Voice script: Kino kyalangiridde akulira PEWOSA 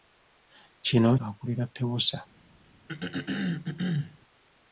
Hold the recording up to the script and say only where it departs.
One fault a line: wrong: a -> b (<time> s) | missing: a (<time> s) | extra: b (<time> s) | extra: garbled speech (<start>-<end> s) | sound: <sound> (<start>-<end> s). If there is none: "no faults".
missing: kyalangiridde (1.1 s)
sound: throat clearing (2.9-4.2 s)